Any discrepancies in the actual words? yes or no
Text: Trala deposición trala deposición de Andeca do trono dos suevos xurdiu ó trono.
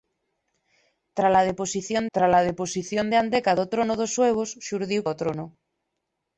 no